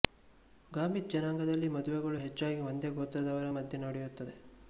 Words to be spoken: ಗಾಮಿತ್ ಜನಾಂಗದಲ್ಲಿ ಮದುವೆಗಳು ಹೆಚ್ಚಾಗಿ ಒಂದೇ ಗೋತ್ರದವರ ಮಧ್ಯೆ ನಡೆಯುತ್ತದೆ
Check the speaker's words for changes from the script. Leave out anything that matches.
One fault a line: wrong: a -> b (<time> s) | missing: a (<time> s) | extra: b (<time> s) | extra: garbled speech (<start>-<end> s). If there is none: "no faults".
no faults